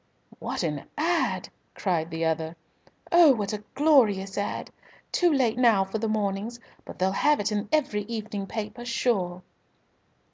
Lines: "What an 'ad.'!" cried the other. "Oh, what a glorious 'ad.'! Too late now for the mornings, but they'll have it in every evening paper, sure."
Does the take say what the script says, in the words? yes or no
yes